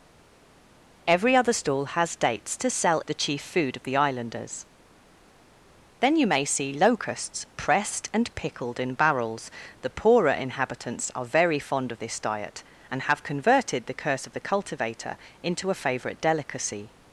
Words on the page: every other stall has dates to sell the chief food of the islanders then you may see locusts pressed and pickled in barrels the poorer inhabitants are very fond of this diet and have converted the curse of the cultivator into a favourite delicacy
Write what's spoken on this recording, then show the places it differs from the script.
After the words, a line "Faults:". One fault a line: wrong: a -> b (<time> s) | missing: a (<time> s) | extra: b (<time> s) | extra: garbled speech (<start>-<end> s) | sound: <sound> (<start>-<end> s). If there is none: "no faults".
every other stall has dates to sell the chief food of the islanders then you may see locusts pressed and pickled in barrels the poorer inhabitants are very fond of this diet and have converted the curse of the cultivator into a favourite delicacy
Faults:
no faults